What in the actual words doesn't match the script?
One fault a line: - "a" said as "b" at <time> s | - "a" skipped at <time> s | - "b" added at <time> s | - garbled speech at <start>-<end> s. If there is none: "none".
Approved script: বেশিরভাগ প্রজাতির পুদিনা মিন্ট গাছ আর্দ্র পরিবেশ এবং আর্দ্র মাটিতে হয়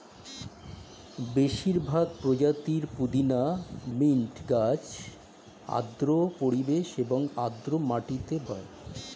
none